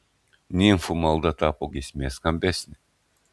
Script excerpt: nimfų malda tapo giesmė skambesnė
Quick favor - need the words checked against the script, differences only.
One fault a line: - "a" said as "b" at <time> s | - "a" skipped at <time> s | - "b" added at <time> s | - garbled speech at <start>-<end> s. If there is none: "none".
none